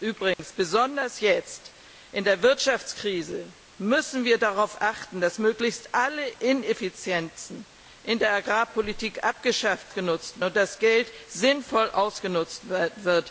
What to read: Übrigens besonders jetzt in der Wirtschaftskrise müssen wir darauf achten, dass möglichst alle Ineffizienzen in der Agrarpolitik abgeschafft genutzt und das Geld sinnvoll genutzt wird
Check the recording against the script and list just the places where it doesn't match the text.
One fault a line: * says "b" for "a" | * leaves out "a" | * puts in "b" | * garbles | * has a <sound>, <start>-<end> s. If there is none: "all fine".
* has a dropout, 0.3-0.4 s